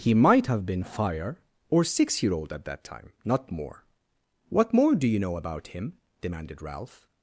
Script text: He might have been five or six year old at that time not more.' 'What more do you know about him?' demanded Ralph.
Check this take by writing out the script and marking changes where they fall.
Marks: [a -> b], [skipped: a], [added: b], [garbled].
He might have been [five -> fire] or six year old at that time not more.' 'What more do you know about him?' demanded Ralph.